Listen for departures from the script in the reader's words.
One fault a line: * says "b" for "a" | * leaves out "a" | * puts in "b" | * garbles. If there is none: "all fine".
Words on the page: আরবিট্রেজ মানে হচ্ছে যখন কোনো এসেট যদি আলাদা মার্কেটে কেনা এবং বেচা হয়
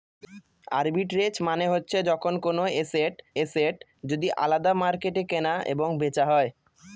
* puts in "এসেট"